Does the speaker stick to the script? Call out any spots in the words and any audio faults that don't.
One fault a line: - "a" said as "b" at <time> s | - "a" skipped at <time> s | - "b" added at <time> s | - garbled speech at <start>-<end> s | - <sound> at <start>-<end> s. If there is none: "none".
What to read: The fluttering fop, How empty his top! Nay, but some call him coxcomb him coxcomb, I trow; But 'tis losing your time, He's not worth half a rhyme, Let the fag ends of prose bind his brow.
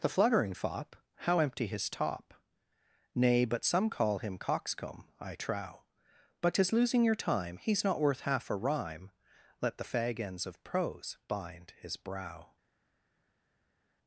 - "him coxcomb" skipped at 5.1 s